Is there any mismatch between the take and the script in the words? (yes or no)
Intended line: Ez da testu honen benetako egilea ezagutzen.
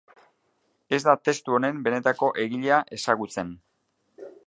no